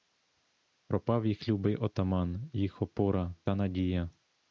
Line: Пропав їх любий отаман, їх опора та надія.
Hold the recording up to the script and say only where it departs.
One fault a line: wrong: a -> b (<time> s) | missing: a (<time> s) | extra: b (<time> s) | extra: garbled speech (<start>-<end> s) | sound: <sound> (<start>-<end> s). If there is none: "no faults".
no faults